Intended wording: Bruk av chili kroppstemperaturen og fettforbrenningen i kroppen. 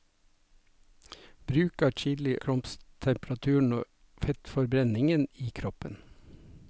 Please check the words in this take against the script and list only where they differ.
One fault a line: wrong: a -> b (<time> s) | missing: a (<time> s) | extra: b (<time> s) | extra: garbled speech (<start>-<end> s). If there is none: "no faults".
no faults